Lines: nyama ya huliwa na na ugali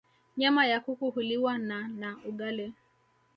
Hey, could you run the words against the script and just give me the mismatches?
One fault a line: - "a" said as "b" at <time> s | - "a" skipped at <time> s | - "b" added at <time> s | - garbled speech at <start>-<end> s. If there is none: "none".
- "kuku" added at 0.8 s